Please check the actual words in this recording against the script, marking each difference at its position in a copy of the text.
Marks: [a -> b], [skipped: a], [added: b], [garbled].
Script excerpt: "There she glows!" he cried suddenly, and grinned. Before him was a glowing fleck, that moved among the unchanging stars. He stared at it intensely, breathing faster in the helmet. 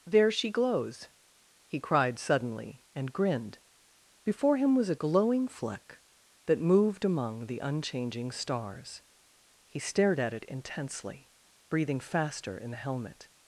"There she glows!" he cried suddenly, and grinned. Before him was a glowing fleck, that moved among the unchanging stars. He stared at it intensely, breathing faster in the helmet.